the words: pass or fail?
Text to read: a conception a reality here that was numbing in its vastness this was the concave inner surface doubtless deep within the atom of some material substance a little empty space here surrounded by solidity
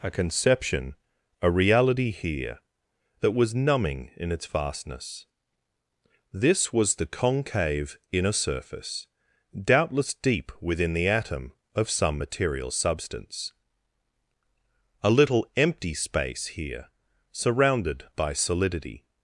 pass